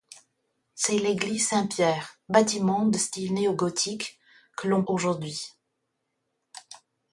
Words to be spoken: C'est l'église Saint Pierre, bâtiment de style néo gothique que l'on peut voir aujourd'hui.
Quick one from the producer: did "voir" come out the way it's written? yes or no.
no